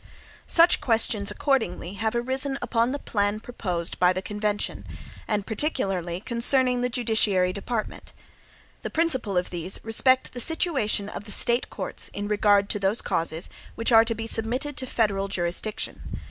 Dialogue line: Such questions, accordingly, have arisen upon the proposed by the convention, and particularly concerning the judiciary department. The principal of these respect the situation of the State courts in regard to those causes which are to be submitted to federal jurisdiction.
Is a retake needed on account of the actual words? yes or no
yes